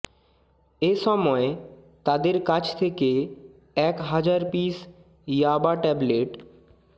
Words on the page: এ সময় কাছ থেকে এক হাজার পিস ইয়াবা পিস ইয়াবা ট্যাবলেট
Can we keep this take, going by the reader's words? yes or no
no